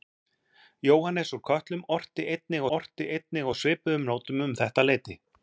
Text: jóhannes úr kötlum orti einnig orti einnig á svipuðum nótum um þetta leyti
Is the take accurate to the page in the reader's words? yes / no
yes